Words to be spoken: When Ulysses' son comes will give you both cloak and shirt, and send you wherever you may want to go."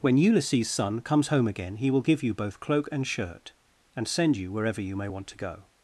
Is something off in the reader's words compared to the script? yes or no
yes